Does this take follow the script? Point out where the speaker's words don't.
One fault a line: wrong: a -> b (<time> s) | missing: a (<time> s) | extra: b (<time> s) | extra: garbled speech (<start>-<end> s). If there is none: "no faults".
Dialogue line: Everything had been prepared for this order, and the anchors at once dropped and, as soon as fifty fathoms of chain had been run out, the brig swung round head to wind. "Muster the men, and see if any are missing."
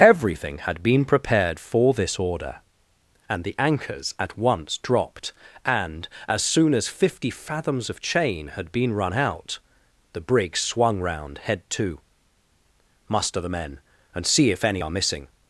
missing: wind (12.0 s)